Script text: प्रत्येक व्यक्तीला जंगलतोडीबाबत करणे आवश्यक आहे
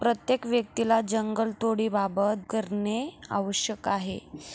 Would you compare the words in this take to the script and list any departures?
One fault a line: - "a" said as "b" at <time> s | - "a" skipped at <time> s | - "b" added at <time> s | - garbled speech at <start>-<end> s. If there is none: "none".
none